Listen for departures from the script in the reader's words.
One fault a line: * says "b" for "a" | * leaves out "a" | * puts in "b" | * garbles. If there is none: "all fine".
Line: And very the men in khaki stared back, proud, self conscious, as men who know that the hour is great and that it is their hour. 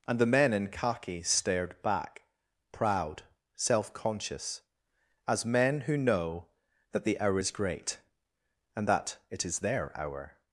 * leaves out "very"